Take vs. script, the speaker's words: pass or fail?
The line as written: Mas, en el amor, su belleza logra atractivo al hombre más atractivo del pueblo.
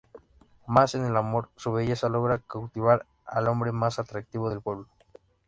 fail